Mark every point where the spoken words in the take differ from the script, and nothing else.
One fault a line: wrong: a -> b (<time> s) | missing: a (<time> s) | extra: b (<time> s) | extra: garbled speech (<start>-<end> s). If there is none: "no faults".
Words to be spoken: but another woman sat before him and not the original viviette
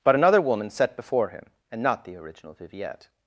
wrong: sat -> set (0.7 s)